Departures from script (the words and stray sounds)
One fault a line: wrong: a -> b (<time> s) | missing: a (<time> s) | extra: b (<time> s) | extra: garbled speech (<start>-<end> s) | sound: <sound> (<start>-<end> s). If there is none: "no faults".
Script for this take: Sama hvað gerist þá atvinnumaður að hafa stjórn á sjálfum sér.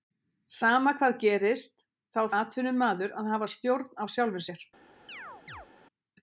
sound: chirp (5.1-5.7 s)